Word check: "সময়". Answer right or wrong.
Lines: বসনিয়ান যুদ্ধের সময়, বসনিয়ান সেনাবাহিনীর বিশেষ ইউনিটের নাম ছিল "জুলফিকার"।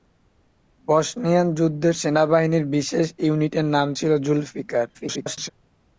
wrong